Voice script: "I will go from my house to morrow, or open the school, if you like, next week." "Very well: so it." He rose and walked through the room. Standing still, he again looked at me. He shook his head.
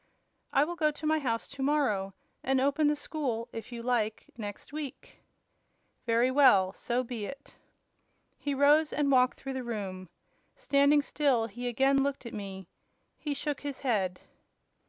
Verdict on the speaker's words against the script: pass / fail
fail